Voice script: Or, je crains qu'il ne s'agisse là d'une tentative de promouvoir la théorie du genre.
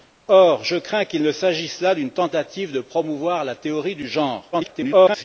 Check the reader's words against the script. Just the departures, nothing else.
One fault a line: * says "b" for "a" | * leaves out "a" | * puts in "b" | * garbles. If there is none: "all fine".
* garbles